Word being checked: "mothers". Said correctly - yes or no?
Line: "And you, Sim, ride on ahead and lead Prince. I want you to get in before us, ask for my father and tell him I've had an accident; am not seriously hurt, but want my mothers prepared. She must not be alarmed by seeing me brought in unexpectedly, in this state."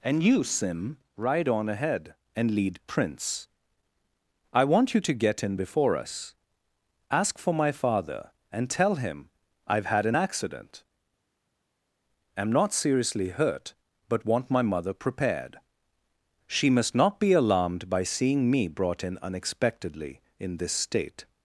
no